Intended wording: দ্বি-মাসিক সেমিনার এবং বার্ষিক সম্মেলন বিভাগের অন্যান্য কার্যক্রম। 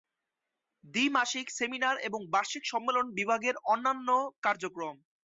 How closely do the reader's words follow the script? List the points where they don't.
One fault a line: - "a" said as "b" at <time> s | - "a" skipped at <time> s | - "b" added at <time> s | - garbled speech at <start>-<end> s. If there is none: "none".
none